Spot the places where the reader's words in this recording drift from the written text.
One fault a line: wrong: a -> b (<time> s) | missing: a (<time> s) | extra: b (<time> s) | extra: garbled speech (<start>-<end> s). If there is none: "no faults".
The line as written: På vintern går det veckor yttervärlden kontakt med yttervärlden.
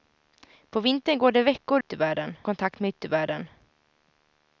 no faults